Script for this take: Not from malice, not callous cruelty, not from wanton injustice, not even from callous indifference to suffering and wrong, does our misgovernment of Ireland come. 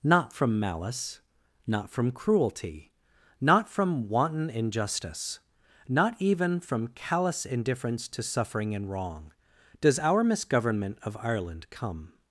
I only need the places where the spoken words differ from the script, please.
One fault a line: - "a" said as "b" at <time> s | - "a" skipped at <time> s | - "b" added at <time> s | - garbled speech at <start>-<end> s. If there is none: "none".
- "callous" said as "from" at 1.9 s